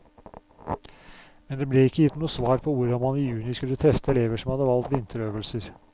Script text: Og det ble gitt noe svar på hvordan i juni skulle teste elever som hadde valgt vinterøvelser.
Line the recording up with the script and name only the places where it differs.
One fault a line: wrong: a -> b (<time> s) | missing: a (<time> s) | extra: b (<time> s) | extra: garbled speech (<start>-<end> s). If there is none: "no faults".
wrong: Og -> Men (1.5 s)
extra: ikke (1.8 s)
extra: man (3.0 s)